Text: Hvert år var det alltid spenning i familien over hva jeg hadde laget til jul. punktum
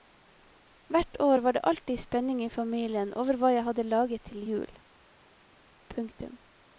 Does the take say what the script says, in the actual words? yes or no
yes